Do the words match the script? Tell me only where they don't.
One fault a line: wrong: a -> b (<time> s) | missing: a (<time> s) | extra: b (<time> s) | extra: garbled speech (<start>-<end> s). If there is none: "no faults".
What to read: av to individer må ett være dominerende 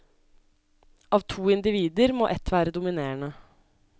no faults